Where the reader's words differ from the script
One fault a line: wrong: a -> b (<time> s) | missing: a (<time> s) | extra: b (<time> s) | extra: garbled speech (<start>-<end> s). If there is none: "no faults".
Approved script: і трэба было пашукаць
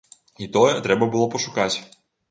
extra: тое (0.6 s)